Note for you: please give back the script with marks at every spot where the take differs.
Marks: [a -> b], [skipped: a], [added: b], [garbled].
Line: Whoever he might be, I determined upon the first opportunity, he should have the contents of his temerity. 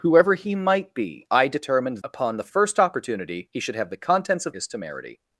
Whoever he might be, I determined upon the first opportunity, he should have the contents of his temerity.